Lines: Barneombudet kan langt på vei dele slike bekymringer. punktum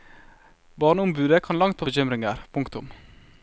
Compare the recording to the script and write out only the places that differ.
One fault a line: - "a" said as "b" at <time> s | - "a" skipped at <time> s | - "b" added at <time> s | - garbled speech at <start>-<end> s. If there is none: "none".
- "vei dele slike" skipped at 1.9 s